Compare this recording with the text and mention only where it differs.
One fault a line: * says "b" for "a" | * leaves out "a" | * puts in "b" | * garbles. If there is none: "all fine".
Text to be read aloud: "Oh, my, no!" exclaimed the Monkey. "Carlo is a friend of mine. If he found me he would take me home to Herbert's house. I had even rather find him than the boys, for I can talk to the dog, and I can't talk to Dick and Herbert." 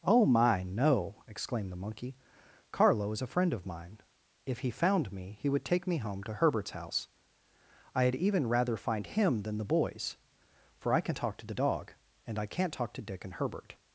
all fine